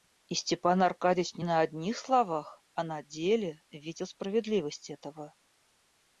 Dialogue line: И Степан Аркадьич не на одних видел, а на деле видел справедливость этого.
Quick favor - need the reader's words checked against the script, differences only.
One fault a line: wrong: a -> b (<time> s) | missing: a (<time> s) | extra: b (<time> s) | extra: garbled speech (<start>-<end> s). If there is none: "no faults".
wrong: видел -> словах (2.0 s)